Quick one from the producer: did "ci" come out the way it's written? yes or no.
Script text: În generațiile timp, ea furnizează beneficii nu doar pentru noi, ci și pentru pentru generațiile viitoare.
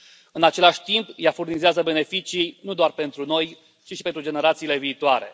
yes